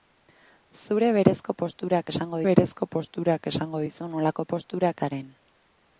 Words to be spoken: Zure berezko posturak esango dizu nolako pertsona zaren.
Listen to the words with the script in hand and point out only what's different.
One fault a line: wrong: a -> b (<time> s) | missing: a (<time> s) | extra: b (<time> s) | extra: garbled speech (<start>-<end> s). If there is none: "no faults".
extra: berezko posturak esango (2.5 s)
wrong: pertsona -> posturak (4.5 s)